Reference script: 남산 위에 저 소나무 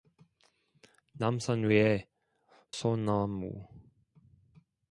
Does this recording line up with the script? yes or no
no